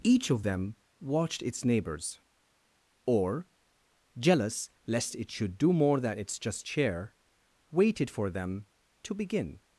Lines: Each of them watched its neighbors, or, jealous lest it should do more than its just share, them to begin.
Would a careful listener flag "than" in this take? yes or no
no